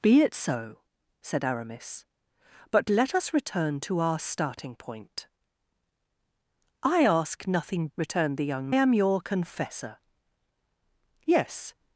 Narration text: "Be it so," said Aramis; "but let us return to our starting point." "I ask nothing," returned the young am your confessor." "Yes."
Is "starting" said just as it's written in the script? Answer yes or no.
yes